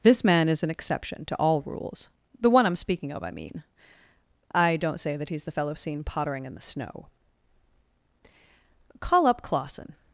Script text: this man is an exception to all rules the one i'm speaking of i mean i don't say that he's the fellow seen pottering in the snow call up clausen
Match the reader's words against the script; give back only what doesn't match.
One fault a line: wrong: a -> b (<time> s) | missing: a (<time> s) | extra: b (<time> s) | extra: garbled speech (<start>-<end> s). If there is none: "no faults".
no faults